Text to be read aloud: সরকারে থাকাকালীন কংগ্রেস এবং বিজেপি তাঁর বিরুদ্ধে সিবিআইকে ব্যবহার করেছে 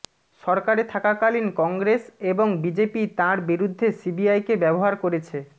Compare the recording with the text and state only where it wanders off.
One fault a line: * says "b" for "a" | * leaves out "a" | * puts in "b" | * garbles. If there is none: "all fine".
all fine